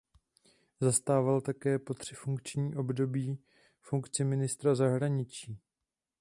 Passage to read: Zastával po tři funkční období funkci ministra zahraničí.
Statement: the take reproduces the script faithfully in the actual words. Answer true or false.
false